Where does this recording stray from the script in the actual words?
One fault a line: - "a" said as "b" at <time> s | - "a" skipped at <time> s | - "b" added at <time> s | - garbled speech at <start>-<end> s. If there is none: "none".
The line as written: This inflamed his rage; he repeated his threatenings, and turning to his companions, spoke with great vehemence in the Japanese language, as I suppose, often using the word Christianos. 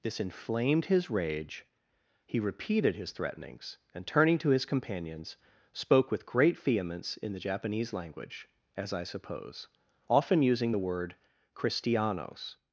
none